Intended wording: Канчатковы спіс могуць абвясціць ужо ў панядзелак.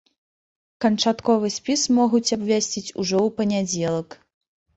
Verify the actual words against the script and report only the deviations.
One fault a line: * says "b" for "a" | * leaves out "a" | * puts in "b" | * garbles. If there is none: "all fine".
all fine